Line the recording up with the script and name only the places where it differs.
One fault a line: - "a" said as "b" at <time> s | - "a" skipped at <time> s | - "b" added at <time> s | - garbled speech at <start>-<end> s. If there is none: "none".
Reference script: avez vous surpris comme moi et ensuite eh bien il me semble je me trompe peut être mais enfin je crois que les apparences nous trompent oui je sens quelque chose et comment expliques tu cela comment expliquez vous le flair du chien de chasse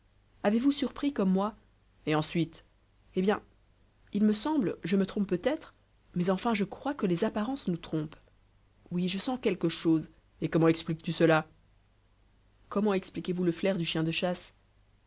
none